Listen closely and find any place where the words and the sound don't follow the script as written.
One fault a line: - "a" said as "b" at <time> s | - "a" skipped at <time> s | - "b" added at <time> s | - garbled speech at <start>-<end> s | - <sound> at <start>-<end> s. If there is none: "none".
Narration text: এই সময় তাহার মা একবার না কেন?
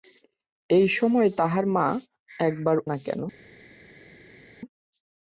none